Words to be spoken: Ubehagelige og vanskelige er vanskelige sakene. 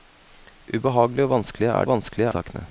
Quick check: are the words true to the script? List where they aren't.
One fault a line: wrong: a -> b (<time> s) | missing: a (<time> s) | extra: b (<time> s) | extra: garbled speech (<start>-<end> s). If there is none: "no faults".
no faults